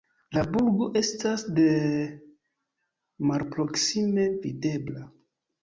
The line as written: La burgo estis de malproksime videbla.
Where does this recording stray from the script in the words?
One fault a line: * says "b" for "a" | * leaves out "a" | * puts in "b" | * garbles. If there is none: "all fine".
* says "estas" for "estis"